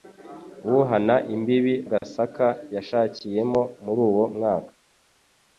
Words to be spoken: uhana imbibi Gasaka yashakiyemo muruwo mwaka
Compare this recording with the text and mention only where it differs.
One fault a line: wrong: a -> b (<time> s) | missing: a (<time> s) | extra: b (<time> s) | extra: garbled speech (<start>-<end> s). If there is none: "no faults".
no faults